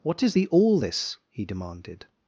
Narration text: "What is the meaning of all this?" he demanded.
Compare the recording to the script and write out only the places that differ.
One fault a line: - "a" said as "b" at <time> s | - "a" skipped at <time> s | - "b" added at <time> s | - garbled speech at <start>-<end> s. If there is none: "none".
- "meaning of" skipped at 0.5 s